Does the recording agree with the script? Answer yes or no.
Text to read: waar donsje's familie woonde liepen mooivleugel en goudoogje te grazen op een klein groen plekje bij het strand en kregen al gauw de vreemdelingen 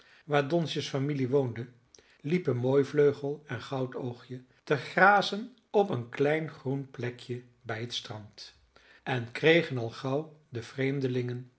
yes